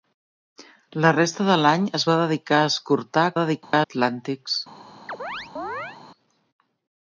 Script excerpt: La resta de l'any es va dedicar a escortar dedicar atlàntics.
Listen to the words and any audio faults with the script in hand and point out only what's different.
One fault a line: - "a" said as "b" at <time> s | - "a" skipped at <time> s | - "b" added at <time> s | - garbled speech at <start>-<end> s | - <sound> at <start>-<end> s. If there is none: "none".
- dropout at 3.6-3.7 s
- chirp at 5.1-6.0 s